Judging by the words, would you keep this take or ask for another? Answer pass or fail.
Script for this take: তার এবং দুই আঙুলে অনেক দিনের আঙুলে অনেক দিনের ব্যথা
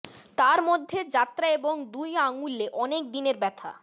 fail